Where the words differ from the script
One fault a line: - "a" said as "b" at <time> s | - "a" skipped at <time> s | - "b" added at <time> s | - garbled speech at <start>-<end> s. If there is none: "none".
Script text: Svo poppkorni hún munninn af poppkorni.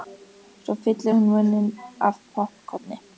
- "poppkorni" said as "fyllir" at 0.8 s